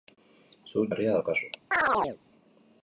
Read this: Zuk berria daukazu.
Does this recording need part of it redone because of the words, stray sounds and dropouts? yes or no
yes